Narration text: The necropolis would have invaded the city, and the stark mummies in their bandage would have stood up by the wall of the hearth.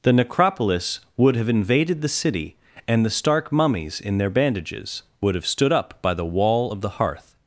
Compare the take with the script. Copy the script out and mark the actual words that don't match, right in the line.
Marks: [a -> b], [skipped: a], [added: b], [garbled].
The necropolis would have invaded the city, and the stark mummies in their [bandage -> bandages] would have stood up by the wall of the hearth.